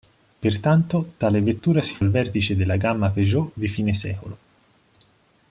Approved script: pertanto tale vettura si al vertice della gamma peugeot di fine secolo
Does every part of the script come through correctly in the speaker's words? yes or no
yes